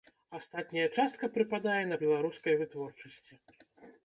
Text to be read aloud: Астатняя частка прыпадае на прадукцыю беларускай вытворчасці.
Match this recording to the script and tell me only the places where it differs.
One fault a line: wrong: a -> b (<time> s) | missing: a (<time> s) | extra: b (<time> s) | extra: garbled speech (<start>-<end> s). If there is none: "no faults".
missing: прадукцыю (2.0 s)